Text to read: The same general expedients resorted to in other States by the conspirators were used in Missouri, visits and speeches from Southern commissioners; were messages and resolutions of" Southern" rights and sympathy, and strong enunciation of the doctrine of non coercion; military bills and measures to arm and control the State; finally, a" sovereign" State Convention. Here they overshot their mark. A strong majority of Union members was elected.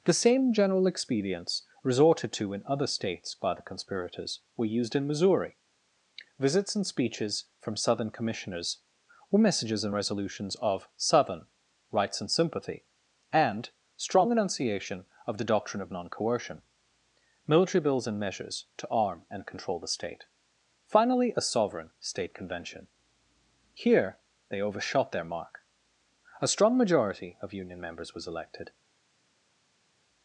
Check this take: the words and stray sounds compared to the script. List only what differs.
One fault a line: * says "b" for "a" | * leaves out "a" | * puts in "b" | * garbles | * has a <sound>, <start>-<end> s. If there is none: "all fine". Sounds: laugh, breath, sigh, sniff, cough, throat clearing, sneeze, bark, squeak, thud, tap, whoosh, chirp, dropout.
all fine